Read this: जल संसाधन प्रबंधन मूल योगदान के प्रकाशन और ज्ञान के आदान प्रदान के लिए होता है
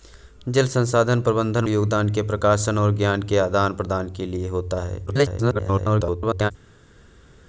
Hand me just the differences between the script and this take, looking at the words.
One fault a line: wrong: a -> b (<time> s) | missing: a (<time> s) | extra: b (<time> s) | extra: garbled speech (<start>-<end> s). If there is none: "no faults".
missing: मूल (1.6 s)
extra: garbled speech (5.1-6.5 s)